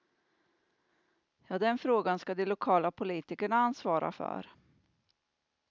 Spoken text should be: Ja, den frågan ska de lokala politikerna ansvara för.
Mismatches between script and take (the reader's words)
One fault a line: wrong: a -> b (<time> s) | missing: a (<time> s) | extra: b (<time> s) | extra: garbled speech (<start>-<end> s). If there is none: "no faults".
no faults